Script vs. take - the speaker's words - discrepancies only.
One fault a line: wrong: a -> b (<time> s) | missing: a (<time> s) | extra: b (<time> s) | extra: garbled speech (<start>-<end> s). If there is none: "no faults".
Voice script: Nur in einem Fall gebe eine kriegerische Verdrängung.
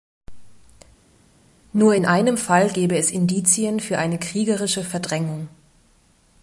extra: es Indizien für (3.0 s)